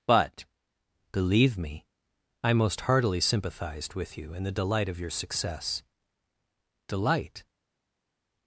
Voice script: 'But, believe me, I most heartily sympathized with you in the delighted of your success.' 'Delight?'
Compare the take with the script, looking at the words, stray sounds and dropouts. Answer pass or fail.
fail